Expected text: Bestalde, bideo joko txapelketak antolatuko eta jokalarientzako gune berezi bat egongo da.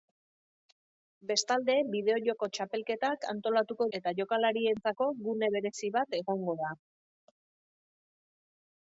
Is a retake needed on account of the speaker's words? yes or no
no